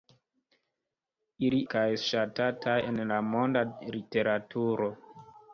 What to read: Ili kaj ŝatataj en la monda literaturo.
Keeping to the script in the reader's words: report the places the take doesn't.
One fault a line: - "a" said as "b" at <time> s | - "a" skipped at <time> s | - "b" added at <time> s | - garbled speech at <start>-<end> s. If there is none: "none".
none